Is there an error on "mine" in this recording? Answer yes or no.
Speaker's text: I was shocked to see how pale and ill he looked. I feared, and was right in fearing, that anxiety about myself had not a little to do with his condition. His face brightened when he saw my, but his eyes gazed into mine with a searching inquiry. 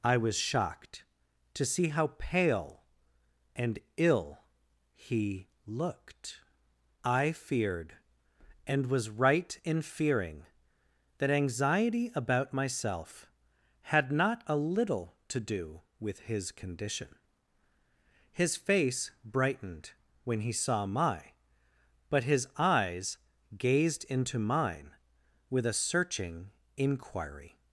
no